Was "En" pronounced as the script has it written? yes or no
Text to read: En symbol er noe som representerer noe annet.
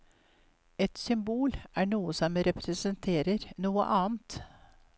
no